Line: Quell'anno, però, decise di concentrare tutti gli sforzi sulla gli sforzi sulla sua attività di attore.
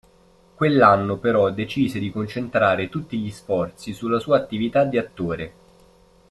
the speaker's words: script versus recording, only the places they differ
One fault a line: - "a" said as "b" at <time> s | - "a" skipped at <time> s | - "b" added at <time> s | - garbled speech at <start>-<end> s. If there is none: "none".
- "gli sforzi sulla" skipped at 4.2 s